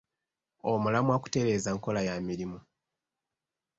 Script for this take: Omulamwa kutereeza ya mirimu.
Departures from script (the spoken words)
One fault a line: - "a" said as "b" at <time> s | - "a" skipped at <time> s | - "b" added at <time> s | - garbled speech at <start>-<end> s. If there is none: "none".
- "nkola" added at 1.8 s